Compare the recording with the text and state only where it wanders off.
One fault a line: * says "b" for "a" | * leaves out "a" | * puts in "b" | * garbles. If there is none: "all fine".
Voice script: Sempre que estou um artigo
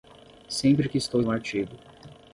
all fine